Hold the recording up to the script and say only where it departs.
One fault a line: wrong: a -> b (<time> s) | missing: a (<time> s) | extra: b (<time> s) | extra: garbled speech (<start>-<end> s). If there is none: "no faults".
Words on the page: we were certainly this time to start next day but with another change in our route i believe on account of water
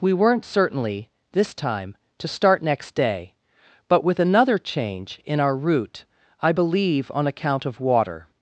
wrong: were -> weren't (0.1 s)